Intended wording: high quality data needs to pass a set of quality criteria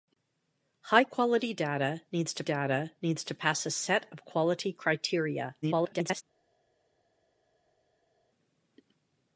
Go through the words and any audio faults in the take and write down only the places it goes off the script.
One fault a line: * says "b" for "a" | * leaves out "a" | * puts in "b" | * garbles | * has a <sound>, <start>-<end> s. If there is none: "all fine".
* puts in "data needs to"
* garbles